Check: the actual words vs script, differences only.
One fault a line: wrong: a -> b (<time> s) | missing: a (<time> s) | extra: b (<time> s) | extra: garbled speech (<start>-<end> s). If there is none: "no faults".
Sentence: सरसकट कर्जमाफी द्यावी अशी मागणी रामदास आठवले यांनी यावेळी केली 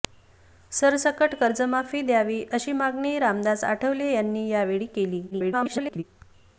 extra: garbled speech (5.3-6.0 s)